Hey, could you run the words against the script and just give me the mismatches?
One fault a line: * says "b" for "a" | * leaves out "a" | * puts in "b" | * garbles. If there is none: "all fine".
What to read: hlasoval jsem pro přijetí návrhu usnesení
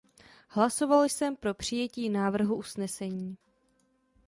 all fine